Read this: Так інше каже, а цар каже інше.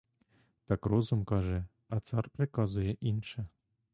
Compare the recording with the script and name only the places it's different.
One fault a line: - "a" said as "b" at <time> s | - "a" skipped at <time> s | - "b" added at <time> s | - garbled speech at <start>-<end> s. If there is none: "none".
- "інше" said as "розум" at 0.9 s
- "каже" said as "приказує" at 2.3 s